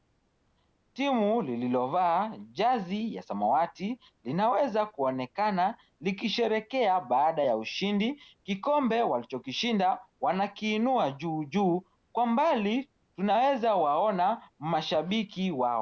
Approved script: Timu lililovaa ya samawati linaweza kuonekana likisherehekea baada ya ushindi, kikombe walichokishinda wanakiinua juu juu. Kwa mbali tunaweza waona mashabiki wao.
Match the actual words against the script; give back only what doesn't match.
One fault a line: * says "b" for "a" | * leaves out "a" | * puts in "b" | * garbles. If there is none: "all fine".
* puts in "jazi"